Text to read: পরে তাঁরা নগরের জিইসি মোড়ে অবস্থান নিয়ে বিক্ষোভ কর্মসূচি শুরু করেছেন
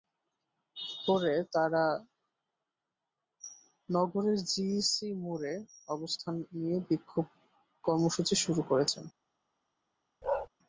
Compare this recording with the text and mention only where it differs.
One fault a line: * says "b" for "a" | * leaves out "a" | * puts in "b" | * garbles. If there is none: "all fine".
all fine